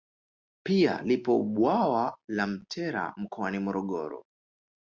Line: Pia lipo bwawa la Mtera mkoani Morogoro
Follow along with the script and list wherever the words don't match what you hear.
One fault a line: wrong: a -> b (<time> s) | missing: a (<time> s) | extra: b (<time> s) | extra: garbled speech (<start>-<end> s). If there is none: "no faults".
no faults